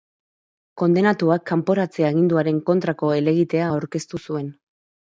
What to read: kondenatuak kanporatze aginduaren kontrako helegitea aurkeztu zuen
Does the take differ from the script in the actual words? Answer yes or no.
no